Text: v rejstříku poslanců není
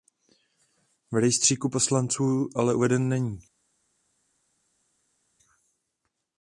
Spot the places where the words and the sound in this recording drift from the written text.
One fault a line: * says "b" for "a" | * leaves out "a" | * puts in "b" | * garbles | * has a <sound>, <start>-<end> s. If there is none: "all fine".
* puts in "ale uveden"